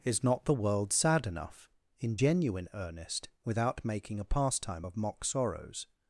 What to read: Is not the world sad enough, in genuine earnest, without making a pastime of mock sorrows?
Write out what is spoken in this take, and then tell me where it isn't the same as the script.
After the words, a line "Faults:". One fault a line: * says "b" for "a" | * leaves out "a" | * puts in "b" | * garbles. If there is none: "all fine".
Is not the world sad enough, in genuine earnest, without making a pastime of mock sorrows?
Faults:
all fine